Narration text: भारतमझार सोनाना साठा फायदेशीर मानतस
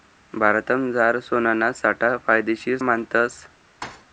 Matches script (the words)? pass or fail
pass